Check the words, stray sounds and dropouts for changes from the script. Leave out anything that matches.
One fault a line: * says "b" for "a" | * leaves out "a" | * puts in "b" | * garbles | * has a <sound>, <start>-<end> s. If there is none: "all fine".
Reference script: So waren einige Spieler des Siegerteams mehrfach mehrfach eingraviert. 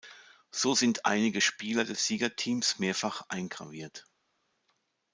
* says "sind" for "waren"
* leaves out "mehrfach"